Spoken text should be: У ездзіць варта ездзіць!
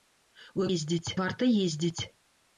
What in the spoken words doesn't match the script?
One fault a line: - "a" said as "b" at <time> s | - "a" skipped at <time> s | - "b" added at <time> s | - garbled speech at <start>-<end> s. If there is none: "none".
none